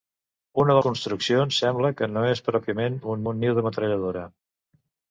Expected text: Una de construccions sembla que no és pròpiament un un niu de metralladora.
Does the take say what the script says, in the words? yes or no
yes